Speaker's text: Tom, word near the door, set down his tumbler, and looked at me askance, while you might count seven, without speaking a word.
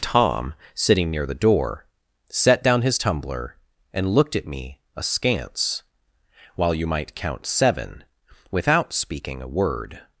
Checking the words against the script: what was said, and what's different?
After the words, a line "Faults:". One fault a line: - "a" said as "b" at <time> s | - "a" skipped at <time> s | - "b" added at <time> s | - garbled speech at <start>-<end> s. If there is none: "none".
Tom, sitting near the door, set down his tumbler, and looked at me askance, while you might count seven, without speaking a word.
Faults:
- "word" said as "sitting" at 0.8 s